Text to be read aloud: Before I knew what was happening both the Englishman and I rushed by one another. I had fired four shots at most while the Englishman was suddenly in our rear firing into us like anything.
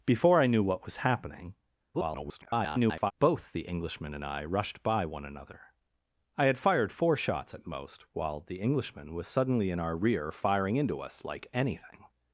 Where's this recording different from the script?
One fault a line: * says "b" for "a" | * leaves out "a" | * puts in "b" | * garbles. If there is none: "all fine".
* garbles